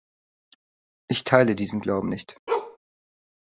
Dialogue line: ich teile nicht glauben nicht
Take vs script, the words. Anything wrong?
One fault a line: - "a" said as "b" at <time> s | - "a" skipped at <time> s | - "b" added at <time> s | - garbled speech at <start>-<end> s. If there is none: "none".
- "nicht" said as "diesen" at 1.6 s